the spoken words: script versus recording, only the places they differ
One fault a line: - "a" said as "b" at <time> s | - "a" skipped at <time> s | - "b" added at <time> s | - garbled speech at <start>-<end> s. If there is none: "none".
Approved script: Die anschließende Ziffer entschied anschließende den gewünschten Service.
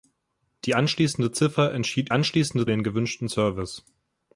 none